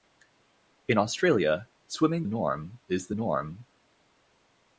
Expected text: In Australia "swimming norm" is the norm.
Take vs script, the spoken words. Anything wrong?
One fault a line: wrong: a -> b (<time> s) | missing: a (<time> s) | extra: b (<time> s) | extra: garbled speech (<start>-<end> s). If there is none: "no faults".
no faults